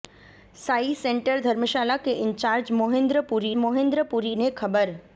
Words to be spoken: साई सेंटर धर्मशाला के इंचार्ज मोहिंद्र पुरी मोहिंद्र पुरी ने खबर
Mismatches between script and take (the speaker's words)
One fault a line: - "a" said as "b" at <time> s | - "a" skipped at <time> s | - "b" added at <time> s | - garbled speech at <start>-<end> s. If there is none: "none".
none